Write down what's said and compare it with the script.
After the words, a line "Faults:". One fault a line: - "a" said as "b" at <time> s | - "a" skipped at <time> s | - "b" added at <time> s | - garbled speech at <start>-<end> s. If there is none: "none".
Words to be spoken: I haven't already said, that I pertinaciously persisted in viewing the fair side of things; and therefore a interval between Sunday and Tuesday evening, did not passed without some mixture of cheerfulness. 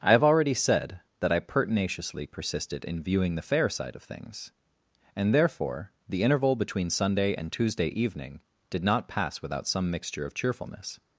I have already said, that I pertinaciously persisted in viewing the fair side of things; and therefore the interval between Sunday and Tuesday evening, did not pass without some mixture of cheerfulness.
Faults:
- "haven't" said as "have" at 0.1 s
- "a" said as "the" at 6.1 s
- "passed" said as "pass" at 9.1 s